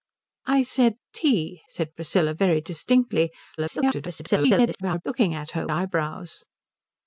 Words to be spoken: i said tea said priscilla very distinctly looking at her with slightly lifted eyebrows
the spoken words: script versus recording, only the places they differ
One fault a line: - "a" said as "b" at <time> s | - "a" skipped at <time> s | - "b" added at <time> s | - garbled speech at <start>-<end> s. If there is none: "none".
- garbled speech at 3.6-5.0 s
- "with slightly lifted" skipped at 5.7 s